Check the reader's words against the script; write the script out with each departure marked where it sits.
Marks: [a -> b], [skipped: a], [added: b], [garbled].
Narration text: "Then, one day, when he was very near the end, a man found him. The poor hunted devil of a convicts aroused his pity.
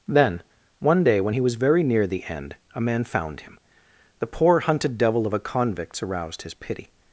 "Then, one day, when he was very near the end, a man found him. The poor hunted devil of a convicts aroused his pity.